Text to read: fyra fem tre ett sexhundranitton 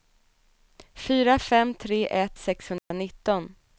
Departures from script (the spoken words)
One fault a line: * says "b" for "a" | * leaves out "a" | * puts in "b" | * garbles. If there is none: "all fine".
all fine